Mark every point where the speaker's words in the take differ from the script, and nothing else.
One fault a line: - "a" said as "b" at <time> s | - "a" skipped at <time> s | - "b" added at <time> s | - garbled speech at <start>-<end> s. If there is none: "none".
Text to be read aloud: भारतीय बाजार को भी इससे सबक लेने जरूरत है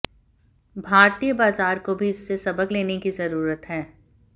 - "की" added at 3.0 s